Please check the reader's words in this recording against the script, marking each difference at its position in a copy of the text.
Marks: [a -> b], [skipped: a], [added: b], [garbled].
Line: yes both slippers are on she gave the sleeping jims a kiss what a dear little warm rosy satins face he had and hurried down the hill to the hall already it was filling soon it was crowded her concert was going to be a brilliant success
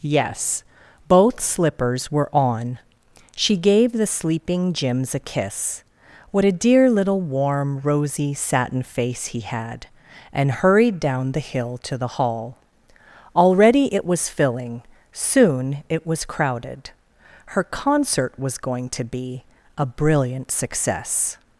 yes both slippers [are -> were] on she gave the sleeping jims a kiss what a dear little warm rosy [satins -> satin] face he had and hurried down the hill to the hall already it was filling soon it was crowded her concert was going to be a brilliant success